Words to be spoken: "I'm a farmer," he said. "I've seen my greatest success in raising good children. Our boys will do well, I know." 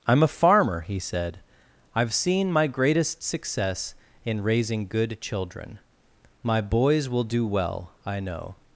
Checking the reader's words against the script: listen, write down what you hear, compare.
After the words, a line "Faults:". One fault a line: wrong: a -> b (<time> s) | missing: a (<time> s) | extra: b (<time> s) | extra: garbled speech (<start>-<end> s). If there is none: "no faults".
"I'm a farmer," he said. "I've seen my greatest success in raising good children. My boys will do well, I know."
Faults:
wrong: Our -> My (6.4 s)